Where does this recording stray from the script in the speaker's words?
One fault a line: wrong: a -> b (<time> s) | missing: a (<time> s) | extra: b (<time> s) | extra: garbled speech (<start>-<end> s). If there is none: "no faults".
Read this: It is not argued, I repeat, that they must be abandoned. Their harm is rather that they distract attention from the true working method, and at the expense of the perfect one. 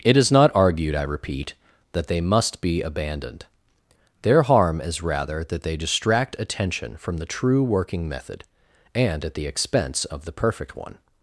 no faults